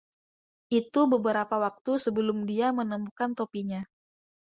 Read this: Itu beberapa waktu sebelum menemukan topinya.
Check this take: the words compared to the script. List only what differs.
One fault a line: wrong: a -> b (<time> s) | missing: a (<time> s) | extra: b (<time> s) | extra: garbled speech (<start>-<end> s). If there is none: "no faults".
extra: dia (2.5 s)